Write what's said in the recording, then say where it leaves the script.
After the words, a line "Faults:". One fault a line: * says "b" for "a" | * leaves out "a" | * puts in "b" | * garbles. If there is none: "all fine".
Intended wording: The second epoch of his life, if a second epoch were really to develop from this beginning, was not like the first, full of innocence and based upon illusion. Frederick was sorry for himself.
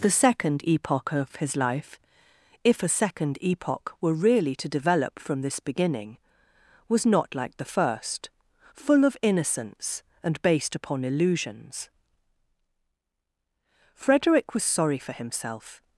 The second epoch of his life, if a second epoch were really to develop from this beginning, was not like the first, full of innocence and based upon illusions. Frederick was sorry for himself.
Faults:
* says "illusions" for "illusion"